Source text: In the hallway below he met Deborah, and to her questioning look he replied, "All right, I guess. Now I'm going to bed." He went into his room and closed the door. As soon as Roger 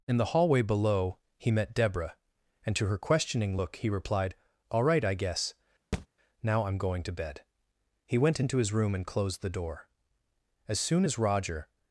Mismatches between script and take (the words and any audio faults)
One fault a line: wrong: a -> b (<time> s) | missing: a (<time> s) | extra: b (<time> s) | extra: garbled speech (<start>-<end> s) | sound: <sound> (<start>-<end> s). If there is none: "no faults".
sound: thud (5.9-6.1 s)